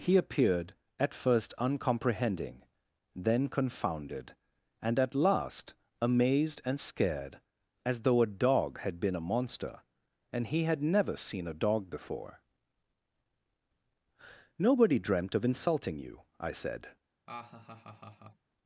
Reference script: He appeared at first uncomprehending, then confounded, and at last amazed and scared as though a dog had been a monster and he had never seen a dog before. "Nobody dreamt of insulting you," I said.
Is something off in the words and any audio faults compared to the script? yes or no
yes